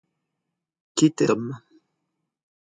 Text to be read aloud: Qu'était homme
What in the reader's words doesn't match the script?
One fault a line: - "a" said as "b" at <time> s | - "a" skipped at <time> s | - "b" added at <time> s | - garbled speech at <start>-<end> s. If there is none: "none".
none